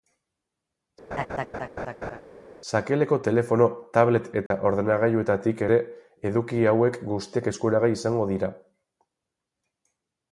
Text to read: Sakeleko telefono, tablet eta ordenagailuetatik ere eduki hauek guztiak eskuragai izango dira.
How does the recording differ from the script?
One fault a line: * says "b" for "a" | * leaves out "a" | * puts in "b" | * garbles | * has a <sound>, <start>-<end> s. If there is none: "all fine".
* has a laugh, 1.1-2.2 s
* has a dropout, 4.5-4.5 s